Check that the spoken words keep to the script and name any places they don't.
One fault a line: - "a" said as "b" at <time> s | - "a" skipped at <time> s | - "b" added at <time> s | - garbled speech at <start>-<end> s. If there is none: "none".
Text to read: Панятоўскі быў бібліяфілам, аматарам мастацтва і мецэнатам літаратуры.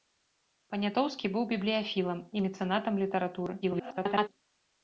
- "аматарам мастацтва" skipped at 2.2 s
- garbled speech at 3.6-4.3 s